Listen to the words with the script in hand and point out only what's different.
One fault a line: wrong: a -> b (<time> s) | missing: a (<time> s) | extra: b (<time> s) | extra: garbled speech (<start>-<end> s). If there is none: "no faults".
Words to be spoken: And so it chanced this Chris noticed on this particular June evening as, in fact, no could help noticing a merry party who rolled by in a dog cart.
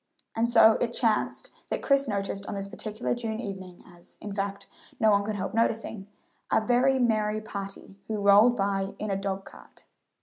wrong: this -> that (1.7 s)
extra: one (5.1 s)
extra: very (6.6 s)